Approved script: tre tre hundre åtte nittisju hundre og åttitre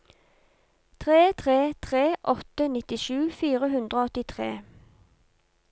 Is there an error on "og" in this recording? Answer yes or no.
no